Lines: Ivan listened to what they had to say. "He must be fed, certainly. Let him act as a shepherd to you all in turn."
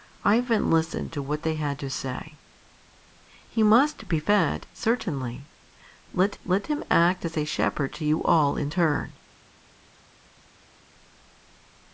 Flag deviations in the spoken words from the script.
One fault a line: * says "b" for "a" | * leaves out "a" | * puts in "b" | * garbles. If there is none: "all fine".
* puts in "let"